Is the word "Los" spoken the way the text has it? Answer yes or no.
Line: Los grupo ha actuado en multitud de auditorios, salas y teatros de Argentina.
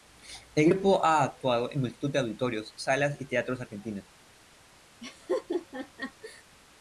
no